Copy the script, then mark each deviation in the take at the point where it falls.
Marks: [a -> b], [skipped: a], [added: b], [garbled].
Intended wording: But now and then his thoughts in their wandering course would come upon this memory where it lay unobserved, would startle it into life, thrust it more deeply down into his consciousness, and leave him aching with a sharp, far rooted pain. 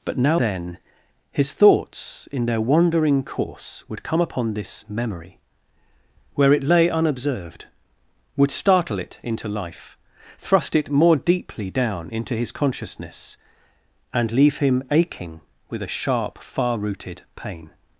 But now [skipped: and] then his thoughts in their wandering course would come upon this memory where it lay unobserved, would startle it into life, thrust it more deeply down into his consciousness, and leave him aching with a sharp, far rooted pain.